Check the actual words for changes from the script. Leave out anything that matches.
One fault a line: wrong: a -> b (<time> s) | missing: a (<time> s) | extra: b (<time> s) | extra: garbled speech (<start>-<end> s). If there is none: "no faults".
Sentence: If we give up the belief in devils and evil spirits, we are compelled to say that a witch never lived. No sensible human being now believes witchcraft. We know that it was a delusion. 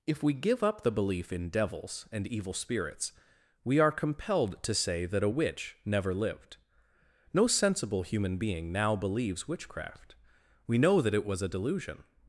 no faults